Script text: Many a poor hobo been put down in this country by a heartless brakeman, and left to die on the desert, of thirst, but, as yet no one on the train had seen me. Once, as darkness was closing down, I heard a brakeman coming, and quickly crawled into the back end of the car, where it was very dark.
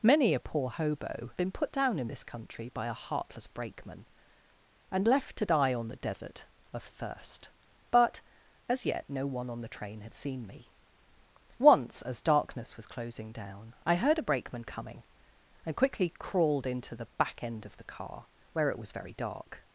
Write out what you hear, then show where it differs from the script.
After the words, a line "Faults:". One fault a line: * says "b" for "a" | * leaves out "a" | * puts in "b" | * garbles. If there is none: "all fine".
Many a poor hobo been put down in this country by a heartless brakeman, and left to die on the desert, of thirst, but, as yet no one on the train had seen me. Once, as darkness was closing down, I heard a brakeman coming, and quickly crawled into the back end of the car, where it was very dark.
Faults:
all fine